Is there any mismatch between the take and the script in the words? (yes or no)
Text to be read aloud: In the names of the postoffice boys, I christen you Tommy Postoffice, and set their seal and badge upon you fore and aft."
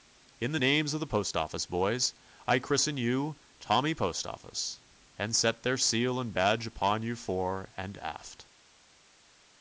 no